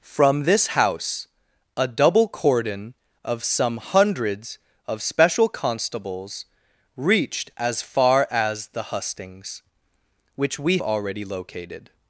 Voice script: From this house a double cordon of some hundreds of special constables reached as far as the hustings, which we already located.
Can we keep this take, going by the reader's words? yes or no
yes